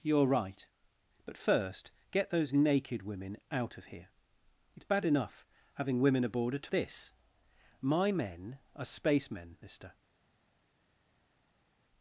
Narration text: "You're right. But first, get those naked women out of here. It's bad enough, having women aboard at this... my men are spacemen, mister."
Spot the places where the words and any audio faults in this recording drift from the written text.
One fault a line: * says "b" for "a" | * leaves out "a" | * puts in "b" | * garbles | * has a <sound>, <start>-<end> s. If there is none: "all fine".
all fine